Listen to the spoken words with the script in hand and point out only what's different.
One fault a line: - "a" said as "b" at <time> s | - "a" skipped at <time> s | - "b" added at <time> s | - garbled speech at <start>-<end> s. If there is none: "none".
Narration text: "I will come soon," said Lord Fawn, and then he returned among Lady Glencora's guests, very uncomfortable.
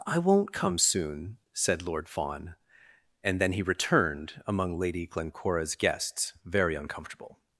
- "will" said as "won't" at 0.2 s